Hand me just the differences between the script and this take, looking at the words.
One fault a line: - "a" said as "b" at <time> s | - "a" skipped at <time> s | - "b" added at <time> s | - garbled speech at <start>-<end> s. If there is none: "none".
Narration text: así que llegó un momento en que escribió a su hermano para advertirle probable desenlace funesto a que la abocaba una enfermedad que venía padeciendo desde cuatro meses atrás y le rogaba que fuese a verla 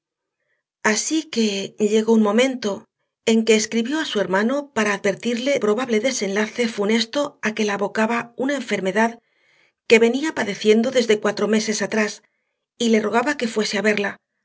none